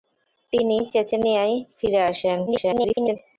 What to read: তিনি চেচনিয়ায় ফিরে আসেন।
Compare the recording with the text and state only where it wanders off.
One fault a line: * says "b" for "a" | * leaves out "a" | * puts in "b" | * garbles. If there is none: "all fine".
* garbles